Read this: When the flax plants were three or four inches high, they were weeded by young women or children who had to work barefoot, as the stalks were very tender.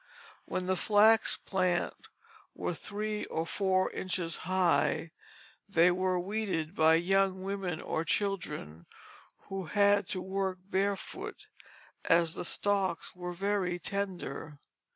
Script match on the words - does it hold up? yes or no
yes